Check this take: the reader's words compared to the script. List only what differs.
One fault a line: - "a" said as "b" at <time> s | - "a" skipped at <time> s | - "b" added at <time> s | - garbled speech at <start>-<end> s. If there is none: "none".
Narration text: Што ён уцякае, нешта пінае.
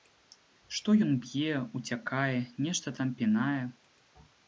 - "б'е" added at 1.3 s
- "там" added at 3.0 s